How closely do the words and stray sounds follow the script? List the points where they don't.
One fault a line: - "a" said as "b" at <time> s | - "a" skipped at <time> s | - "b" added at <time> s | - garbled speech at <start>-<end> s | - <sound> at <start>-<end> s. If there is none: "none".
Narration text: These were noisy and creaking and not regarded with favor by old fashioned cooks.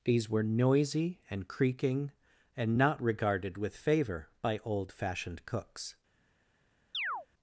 - chirp at 6.9-7.3 s